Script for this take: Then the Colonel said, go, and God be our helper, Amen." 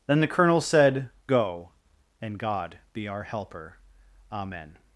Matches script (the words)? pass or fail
pass